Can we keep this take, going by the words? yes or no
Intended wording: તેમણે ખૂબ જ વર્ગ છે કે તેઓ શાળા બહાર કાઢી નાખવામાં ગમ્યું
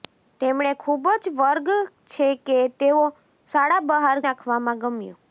no